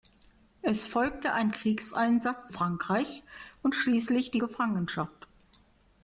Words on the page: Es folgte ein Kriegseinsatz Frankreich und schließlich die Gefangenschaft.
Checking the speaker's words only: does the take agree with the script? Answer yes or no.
yes